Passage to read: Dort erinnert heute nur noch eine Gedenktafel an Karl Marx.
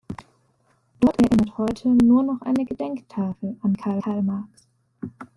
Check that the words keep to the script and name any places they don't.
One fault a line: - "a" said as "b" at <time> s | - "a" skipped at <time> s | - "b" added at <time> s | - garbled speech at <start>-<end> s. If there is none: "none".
- "Karl" added at 4.0 s